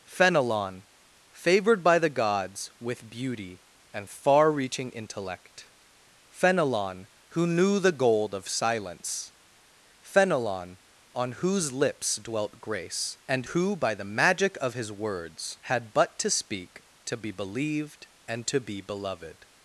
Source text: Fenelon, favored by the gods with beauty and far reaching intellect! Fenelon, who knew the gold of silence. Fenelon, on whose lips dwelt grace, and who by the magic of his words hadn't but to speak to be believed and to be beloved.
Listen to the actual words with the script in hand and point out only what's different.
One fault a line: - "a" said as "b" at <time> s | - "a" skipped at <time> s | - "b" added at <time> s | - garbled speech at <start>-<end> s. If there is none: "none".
- "hadn't" said as "had" at 15.6 s